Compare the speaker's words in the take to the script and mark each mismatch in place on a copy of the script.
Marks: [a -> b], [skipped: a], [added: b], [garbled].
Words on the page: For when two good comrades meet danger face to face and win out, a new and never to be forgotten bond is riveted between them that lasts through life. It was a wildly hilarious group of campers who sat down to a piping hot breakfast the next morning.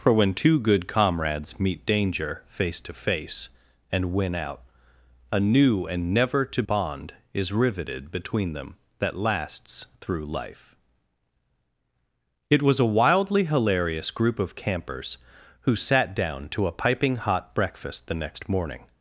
For when two good comrades meet danger face to face and win out, a new and never to [skipped: be forgotten] bond is riveted between them that lasts through life. It was a wildly hilarious group of campers who sat down to a piping hot breakfast the next morning.